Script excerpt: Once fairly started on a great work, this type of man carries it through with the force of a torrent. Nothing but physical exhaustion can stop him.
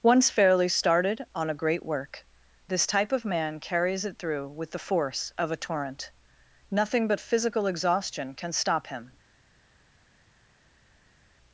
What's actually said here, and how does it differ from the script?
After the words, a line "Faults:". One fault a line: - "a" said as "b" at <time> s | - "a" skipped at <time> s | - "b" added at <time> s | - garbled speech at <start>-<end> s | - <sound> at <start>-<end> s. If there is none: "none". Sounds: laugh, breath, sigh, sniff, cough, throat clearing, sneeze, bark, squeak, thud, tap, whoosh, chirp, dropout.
Once fairly started on a great work, this type of man carries it through with the force of a torrent. Nothing but physical exhaustion can stop him.
Faults:
none